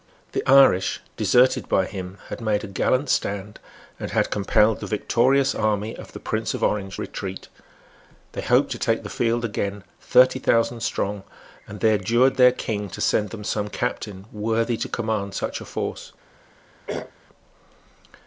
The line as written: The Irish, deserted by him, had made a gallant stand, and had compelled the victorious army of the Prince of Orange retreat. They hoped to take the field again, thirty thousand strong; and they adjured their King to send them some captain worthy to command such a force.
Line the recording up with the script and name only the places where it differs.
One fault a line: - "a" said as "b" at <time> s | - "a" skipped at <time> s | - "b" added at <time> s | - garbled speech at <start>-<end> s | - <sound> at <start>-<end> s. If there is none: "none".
- throat clearing at 16.9-17.1 s